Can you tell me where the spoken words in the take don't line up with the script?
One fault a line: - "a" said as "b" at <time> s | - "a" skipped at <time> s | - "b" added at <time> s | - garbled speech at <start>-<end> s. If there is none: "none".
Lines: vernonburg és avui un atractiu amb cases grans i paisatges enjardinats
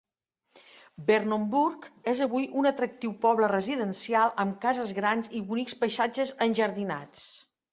- "poble residencial" added at 3.3 s
- "bonics" added at 5.5 s